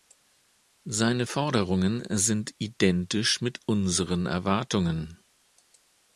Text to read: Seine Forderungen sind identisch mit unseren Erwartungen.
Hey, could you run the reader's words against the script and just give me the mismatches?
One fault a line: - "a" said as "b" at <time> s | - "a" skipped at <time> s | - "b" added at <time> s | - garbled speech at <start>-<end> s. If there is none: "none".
none